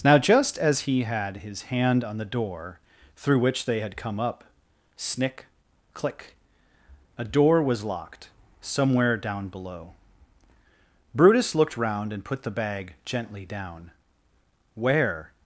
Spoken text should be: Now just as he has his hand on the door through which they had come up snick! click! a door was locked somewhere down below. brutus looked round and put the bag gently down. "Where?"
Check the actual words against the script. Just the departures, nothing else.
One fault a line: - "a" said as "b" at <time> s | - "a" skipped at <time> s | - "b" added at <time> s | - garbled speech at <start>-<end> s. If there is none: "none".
- "has" said as "had" at 1.0 s